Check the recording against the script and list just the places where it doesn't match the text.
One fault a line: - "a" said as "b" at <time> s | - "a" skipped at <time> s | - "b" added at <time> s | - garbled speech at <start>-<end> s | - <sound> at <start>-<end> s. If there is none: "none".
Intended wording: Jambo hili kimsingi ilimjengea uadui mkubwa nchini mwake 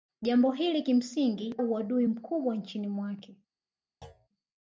- "ilimjengea" skipped at 1.6 s
- thud at 4.0-4.3 s